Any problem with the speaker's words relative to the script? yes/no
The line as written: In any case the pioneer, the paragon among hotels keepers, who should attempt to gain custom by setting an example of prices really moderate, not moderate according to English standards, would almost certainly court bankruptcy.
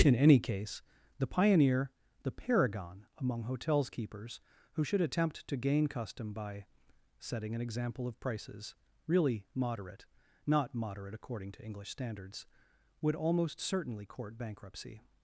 no